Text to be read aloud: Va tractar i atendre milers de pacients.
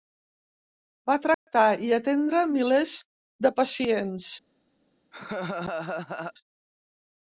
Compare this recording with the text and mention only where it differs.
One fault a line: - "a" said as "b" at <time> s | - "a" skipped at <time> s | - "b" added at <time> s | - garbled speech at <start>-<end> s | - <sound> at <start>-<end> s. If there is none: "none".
- dropout at 1.3-1.5 s
- laugh at 5.1-6.3 s